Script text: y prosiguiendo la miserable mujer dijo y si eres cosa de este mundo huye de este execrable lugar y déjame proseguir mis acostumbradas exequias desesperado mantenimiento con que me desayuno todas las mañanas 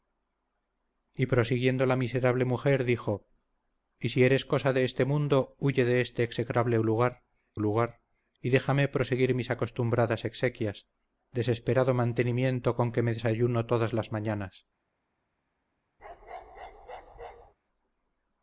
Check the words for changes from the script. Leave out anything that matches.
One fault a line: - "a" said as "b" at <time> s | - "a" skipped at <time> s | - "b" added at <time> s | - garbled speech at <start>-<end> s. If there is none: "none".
- "lugar" added at 7.5 s